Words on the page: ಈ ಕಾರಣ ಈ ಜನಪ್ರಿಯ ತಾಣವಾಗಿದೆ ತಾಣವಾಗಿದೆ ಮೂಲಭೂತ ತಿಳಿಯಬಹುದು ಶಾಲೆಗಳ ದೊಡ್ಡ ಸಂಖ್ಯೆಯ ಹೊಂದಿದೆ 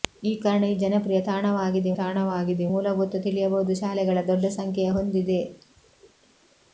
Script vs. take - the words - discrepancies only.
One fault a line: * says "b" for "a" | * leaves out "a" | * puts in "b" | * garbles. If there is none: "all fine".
all fine